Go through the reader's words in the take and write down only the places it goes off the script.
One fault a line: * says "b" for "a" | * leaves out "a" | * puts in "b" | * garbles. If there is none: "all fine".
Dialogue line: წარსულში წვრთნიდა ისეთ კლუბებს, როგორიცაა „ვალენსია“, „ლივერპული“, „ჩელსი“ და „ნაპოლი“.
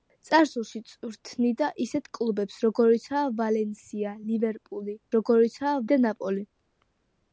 * says "როგორიცაა" for "ჩელსი"